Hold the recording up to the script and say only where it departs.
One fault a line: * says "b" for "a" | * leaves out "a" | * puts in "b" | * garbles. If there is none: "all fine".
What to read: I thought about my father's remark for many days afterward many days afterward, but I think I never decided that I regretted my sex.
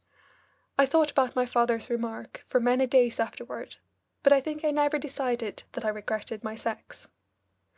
* leaves out "many days afterward"